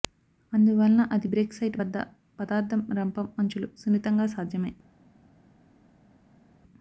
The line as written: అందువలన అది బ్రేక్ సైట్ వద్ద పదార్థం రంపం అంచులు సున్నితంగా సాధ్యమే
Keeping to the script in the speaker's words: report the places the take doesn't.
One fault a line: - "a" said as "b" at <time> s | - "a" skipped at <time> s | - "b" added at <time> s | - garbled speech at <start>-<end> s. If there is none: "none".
none